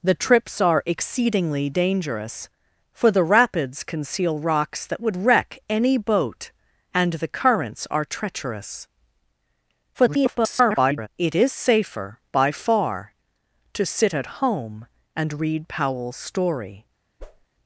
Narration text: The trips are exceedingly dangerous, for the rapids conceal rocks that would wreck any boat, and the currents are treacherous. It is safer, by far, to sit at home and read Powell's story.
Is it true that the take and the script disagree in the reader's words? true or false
true